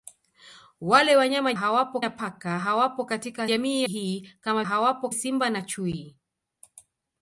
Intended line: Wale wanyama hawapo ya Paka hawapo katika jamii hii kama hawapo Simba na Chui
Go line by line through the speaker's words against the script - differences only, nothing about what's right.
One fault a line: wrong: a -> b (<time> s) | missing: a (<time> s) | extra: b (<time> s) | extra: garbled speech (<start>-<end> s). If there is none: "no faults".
no faults